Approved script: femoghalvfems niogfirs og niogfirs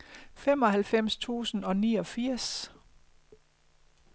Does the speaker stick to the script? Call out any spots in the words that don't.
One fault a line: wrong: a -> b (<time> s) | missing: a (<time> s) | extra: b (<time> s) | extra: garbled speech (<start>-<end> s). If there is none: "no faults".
wrong: niogfirs -> tusind (1.2 s)